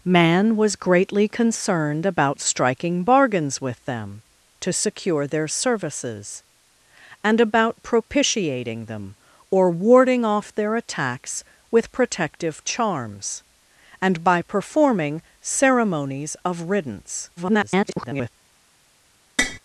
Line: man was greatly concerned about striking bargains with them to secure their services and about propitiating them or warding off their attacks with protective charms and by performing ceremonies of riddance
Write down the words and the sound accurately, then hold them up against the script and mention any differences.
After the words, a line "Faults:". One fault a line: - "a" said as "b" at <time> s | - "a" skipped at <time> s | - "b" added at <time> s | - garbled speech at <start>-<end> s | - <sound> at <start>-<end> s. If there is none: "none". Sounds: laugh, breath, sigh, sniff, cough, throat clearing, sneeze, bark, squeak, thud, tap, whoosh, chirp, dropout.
man was greatly concerned about striking bargains with them to secure their services and about propitiating them or warding off their attacks with protective charms and by performing ceremonies of riddance [garbled]
Faults:
- garbled speech at 17.4-18.3 s
- tap at 19.4-19.6 s